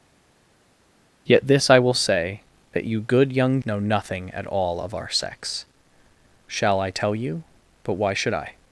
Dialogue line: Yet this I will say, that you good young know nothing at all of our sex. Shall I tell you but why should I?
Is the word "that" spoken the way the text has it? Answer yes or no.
yes